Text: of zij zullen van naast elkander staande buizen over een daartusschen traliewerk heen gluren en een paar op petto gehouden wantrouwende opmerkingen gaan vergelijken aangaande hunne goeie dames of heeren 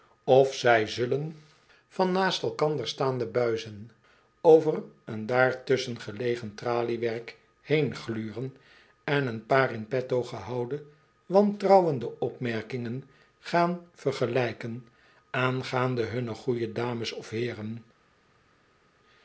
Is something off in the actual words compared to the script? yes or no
yes